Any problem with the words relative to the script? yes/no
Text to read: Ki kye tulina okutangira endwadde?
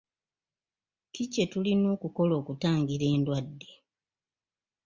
yes